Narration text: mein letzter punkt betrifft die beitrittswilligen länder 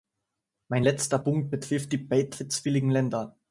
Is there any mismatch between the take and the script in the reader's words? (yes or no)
no